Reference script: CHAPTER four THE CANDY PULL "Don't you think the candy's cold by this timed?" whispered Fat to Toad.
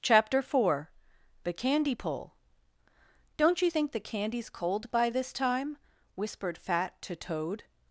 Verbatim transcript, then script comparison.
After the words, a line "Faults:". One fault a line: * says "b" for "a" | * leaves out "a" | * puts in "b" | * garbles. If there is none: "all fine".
CHAPTER four THE CANDY PULL "Don't you think the candy's cold by this time?" whispered Fat to Toad.
Faults:
* says "time" for "timed"